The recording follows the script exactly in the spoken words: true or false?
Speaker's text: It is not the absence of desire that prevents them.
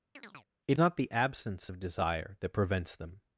false